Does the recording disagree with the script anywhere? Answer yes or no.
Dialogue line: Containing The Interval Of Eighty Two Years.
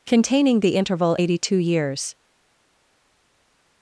yes